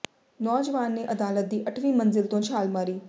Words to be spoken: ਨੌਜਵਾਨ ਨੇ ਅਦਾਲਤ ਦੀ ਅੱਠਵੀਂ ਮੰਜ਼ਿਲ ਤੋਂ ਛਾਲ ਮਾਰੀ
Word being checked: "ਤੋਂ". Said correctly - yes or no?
yes